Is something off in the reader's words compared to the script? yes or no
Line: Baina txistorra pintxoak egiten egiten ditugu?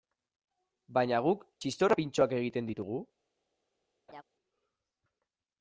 yes